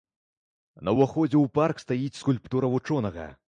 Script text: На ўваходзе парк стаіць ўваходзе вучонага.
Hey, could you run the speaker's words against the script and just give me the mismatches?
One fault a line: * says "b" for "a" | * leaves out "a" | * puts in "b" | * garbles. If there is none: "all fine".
* puts in "ў"
* says "скульптура" for "ўваходзе"